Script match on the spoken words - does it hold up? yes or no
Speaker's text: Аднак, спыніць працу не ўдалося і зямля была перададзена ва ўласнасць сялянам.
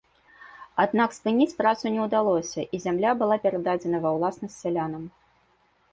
yes